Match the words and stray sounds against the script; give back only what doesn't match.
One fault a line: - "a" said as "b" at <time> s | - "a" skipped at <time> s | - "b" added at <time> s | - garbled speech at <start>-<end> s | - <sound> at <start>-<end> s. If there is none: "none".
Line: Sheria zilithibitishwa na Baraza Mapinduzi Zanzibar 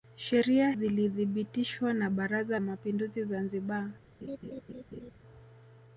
- laugh at 4.2-5.1 s